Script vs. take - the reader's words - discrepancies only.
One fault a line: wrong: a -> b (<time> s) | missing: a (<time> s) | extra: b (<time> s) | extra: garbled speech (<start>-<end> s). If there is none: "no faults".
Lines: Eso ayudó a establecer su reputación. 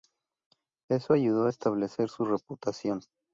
no faults